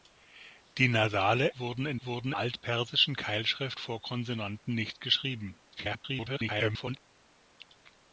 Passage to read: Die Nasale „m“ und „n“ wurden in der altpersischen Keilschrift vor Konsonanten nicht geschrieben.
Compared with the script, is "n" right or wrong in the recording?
wrong